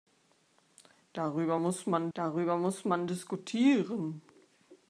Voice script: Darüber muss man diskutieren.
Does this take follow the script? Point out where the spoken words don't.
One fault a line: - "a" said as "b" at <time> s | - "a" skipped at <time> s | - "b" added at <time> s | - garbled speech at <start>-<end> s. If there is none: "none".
- "darüber muss man" added at 2.1 s